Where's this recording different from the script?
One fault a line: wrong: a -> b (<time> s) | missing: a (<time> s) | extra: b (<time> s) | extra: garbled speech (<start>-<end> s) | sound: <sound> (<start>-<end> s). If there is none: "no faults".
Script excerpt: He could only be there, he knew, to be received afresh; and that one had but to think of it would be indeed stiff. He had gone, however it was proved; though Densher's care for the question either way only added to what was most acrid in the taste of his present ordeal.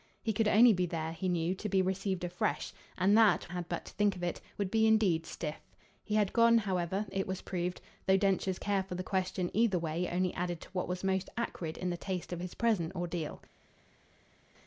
missing: one (3.4 s)